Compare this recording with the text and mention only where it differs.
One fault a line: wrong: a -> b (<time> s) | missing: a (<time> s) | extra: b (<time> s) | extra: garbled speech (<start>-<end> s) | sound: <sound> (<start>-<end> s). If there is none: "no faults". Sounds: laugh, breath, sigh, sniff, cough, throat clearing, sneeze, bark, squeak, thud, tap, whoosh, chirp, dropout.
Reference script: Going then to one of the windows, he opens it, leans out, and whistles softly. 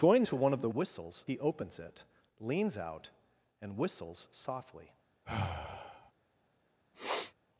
missing: then (0.2 s)
wrong: windows -> whistles (0.7 s)
sound: sigh (5.2-6.1 s)
sound: sniff (6.9-7.3 s)